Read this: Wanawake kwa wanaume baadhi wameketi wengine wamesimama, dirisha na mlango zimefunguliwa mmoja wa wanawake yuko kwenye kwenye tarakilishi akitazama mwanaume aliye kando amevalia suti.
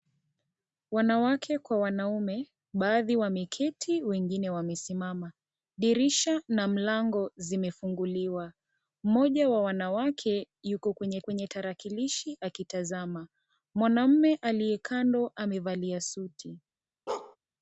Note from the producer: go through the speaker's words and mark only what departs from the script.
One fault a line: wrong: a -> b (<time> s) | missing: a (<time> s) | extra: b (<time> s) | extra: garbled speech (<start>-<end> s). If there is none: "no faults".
no faults